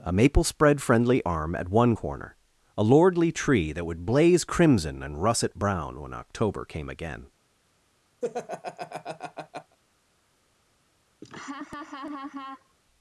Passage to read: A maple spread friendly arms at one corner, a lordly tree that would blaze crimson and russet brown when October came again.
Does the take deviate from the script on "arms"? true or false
true